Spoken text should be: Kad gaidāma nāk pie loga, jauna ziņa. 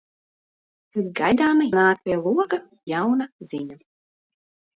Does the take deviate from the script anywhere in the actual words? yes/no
no